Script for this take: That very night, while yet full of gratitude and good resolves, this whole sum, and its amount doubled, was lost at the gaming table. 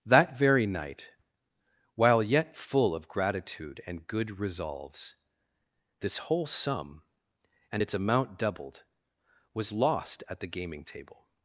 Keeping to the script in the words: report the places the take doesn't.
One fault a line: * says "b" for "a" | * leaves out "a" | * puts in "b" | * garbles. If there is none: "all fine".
all fine